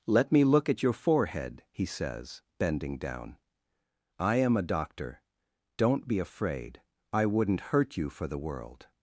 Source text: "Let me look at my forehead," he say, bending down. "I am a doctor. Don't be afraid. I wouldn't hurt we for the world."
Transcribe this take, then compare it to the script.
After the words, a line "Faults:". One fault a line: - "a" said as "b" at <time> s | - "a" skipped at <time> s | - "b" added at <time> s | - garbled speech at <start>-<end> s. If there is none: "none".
"Let me look at your forehead," he says, bending down. "I am a doctor. Don't be afraid. I wouldn't hurt you for the world."
Faults:
- "my" said as "your" at 0.8 s
- "say" said as "says" at 1.9 s
- "we" said as "you" at 8.0 s